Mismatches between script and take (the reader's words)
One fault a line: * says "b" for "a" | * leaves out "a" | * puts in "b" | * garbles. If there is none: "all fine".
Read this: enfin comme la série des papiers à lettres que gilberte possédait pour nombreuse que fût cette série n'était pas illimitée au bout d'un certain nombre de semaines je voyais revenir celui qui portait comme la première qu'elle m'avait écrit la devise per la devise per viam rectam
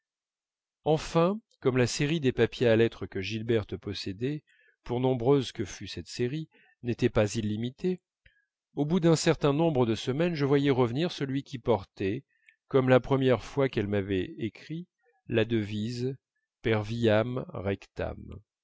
* puts in "fois"
* leaves out "la devise per"